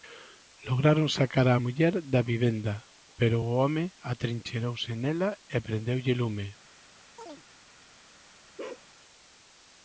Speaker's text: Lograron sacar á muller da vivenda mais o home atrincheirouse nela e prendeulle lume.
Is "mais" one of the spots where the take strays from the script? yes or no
yes